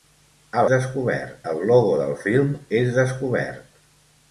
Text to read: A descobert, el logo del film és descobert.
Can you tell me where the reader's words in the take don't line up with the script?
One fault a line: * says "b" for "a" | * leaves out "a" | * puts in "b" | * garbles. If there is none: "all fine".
all fine